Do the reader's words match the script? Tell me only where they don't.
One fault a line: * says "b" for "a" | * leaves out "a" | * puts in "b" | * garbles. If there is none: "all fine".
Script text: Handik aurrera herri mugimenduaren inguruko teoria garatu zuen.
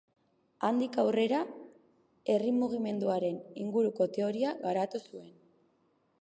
all fine